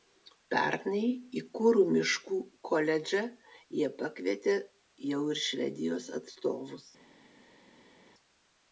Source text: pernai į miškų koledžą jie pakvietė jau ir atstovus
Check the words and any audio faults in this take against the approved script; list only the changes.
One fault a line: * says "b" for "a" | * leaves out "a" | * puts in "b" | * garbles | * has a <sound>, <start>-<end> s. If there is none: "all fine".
* puts in "kuru"
* puts in "švedijos"